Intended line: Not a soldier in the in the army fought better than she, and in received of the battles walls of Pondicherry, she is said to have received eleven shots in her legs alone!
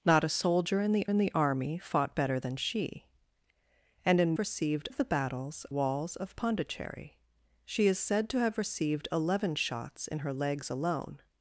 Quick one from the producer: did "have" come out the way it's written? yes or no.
yes